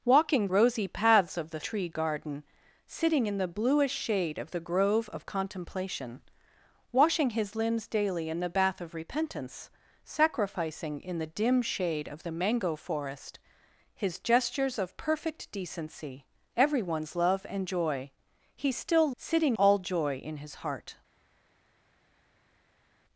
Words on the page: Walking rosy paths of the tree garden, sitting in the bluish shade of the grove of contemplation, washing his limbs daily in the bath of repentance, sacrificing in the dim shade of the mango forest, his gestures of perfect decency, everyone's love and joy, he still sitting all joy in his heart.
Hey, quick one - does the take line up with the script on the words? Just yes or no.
yes